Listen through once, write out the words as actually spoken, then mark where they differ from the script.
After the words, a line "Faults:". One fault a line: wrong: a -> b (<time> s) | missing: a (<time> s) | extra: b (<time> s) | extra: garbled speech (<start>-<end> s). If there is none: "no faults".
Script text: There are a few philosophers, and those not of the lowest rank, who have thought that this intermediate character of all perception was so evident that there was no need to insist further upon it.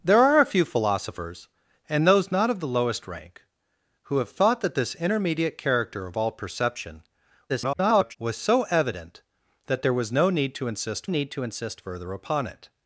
There are a few philosophers, and those not of the lowest rank, who have thought that this intermediate character of all perception [garbled] was so evident that there was no need to insist need to insist further upon it.
Faults:
extra: garbled speech (7.5-8.2 s)
extra: need to insist (11.1 s)